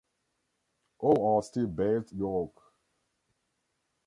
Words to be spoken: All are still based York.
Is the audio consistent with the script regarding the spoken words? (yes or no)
yes